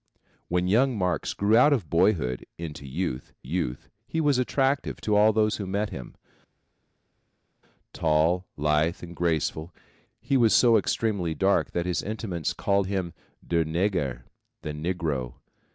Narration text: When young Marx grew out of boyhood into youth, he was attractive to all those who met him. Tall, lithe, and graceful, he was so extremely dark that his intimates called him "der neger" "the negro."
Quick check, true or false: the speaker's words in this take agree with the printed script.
false